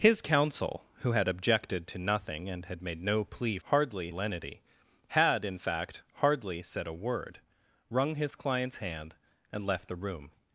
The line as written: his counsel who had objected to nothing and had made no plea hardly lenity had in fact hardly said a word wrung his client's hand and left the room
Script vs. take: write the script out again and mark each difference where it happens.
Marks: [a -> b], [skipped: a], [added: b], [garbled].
his counsel who had objected to nothing and had made no plea hardly lenity had in fact hardly said a word wrung his client's hand and left the room